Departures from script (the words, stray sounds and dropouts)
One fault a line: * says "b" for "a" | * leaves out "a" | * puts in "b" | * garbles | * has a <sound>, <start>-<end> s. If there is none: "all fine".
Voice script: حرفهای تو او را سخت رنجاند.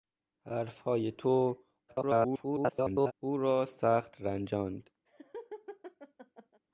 * garbles
* has a laugh, 5.1-6.6 s